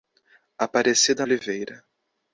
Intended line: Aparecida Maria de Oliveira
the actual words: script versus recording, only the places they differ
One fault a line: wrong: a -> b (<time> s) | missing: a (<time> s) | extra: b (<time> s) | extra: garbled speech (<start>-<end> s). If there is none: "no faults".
missing: Maria de (1.3 s)